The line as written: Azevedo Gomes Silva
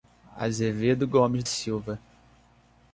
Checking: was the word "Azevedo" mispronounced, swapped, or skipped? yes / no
no